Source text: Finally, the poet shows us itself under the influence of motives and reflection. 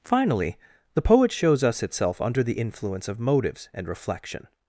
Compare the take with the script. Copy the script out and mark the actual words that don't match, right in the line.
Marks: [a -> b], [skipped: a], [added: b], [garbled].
Finally, the poet shows us itself under the influence of motives and reflection.